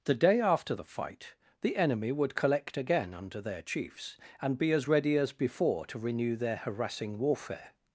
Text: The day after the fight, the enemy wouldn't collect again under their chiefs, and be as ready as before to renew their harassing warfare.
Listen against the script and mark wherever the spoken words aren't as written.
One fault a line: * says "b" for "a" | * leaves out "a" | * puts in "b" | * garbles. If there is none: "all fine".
* says "would" for "wouldn't"